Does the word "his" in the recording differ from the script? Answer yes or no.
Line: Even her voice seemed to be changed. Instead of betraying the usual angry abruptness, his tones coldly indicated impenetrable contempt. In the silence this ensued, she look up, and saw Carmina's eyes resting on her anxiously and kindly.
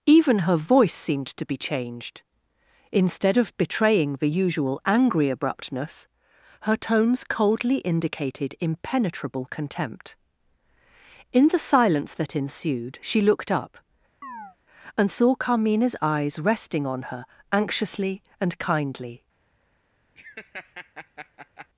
yes